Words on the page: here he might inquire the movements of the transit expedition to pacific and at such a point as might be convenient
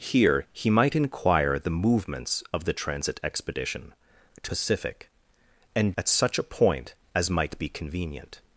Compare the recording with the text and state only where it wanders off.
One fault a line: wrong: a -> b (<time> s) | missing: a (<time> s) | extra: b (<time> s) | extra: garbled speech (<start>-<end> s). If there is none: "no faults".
no faults